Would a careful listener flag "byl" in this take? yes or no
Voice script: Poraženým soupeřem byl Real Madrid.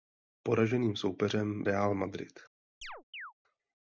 yes